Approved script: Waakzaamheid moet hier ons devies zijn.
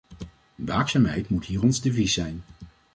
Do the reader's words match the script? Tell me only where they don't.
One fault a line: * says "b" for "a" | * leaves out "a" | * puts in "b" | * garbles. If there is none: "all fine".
all fine